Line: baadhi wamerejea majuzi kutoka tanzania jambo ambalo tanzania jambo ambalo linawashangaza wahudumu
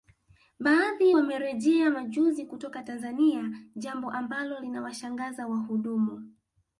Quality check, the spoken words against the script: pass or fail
fail